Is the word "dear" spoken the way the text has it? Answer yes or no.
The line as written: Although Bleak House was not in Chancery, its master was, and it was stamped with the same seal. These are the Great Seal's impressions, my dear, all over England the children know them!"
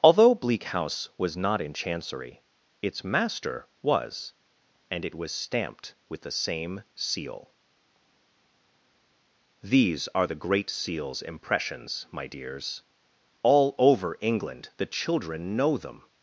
no